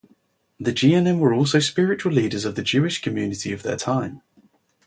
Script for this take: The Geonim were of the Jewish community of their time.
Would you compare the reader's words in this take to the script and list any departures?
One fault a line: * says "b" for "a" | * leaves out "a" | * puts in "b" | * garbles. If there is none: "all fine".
* puts in "also spiritual leaders"